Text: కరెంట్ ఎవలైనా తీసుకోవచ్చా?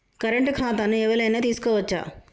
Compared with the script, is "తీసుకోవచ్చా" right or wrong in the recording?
right